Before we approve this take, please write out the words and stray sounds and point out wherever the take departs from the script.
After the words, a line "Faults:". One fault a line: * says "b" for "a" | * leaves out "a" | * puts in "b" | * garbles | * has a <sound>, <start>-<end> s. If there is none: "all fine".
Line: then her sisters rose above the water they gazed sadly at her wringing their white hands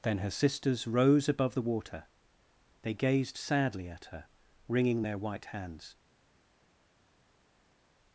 then her sisters rose above the water they gazed sadly at her wringing their white hands
Faults:
all fine